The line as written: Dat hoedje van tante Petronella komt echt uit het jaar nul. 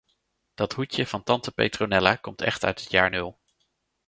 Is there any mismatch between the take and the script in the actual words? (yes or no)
no